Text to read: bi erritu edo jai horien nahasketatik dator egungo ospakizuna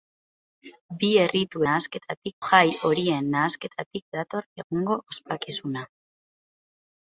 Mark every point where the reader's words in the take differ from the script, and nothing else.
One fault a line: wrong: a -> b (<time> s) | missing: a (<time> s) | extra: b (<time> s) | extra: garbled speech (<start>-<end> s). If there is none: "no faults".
wrong: edo -> nahasketatik (1.7 s)